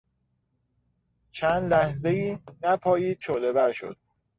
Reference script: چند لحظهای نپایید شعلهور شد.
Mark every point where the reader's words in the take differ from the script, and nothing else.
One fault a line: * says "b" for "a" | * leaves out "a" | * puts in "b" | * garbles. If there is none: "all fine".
all fine